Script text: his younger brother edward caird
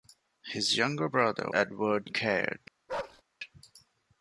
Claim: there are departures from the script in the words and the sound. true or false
true